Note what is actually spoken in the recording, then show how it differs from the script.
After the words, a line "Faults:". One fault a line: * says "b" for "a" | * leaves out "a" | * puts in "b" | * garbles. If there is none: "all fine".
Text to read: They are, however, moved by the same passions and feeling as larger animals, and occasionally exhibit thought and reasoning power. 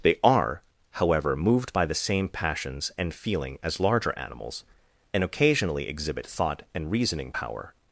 They are, however, moved by the same passions and feeling as larger animals, and occasionally exhibit thought and reasoning power.
Faults:
all fine